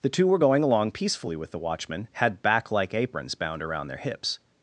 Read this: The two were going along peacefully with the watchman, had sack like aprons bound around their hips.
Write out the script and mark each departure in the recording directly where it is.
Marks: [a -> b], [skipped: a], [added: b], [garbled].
The two were going along peacefully with the watchman, had [sack -> back] like aprons bound around their hips.